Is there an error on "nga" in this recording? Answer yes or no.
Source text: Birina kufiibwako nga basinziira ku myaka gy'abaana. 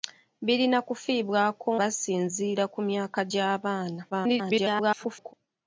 yes